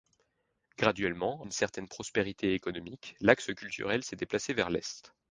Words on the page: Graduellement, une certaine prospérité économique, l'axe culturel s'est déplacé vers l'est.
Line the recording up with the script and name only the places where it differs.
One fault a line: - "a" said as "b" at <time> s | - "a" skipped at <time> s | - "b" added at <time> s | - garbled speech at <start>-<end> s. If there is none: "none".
none